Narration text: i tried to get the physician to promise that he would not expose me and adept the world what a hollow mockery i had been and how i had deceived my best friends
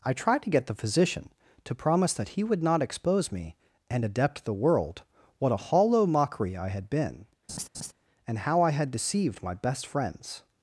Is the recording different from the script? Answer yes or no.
no